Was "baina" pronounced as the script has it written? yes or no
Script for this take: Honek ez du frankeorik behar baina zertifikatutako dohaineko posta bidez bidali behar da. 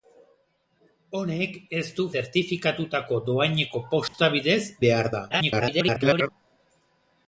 no